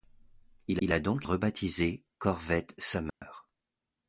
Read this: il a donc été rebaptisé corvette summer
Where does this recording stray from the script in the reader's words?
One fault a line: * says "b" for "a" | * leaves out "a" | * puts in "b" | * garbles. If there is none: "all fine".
* puts in "il"
* leaves out "été"